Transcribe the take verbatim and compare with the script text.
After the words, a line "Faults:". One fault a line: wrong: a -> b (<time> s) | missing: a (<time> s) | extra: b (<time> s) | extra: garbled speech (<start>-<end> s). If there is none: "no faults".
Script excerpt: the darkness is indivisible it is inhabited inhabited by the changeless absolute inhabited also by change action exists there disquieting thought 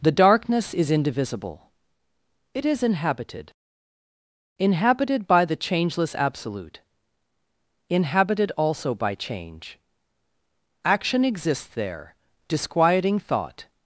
the darkness is indivisible it is inhabited inhabited by the changeless absolute inhabited also by change action exists there disquieting thought
Faults:
no faults